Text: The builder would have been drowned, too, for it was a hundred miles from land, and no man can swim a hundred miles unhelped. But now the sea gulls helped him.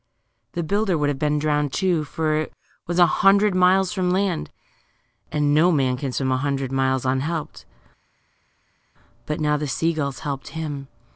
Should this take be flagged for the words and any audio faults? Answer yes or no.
no